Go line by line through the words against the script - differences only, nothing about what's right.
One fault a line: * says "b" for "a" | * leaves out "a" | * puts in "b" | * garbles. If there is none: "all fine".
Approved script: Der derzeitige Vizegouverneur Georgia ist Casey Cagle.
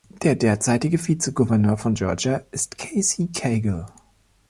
* puts in "von"